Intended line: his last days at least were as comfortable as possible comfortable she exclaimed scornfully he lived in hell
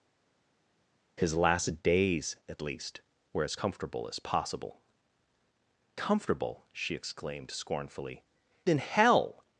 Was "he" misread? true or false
true